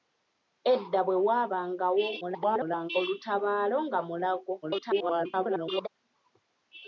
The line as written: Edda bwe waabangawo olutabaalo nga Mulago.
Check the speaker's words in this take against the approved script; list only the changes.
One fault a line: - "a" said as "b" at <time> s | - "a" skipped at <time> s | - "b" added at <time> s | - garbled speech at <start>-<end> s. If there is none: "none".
- garbled speech at 2.2-2.9 s
- garbled speech at 4.6-5.9 s